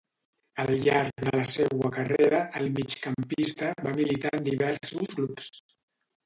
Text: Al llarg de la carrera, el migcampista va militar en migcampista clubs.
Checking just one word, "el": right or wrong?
right